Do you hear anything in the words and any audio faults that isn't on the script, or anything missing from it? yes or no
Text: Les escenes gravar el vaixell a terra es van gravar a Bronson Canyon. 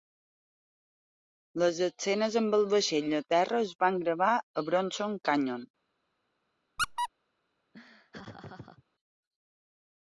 yes